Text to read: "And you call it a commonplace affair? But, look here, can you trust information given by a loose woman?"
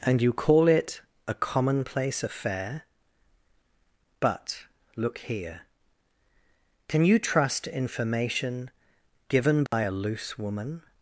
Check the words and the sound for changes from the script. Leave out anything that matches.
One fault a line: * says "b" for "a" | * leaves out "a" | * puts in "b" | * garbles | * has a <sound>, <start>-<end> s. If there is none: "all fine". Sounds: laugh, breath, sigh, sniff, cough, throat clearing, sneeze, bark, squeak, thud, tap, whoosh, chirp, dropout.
* has a dropout, 9.7-9.7 s